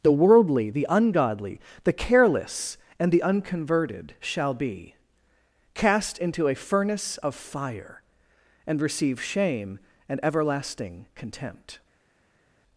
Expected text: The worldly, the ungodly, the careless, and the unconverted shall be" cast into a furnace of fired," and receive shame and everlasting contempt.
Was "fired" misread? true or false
true